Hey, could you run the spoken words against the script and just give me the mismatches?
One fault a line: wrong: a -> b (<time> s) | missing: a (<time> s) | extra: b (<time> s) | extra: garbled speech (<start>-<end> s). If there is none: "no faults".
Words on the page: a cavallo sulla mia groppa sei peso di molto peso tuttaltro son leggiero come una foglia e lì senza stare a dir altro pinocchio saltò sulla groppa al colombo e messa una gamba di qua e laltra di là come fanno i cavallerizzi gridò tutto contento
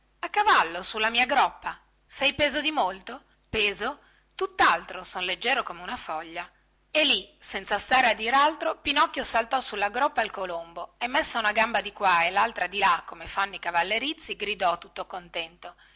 no faults